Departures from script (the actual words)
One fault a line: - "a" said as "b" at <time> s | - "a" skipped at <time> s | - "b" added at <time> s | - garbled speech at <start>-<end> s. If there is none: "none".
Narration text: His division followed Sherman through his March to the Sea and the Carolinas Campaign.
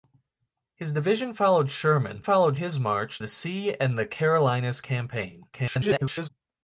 - "through" said as "followed" at 2.2 s
- "to" skipped at 3.2 s
- garbled speech at 5.5-6.3 s